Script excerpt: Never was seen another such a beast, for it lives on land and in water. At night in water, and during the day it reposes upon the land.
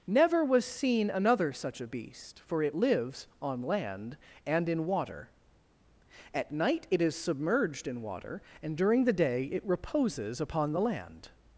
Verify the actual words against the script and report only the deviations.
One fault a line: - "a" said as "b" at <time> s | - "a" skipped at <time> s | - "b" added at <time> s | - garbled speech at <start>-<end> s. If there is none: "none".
- "it is submerged" added at 6.9 s